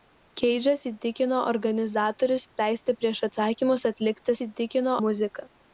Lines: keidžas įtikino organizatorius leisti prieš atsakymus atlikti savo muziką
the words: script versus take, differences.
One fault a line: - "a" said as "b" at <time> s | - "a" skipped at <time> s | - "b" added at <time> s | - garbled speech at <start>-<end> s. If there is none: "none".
- "savo" said as "įtikino" at 4.4 s